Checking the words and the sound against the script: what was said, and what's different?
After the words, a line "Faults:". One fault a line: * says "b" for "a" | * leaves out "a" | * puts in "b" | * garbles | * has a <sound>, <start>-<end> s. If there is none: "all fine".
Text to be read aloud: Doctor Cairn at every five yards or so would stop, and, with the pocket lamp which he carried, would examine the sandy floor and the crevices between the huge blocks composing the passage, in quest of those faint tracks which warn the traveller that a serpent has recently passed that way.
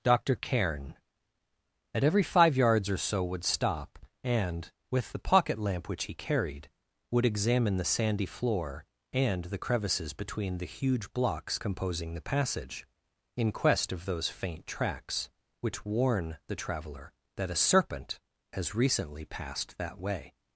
Doctor Cairn at every five yards or so would stop, and, with the pocket lamp which he carried, would examine the sandy floor and the crevices between the huge blocks composing the passage, in quest of those faint tracks which warn the traveller that a serpent has recently passed that way.
Faults:
all fine